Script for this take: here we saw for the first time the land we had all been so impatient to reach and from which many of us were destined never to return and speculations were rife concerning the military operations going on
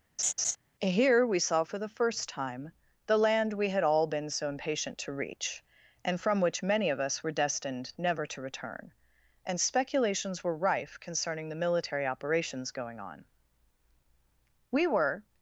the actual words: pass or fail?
fail